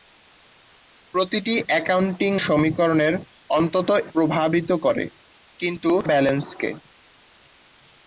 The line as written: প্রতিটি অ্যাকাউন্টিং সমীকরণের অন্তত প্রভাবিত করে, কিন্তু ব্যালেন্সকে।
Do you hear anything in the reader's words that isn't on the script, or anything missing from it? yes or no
no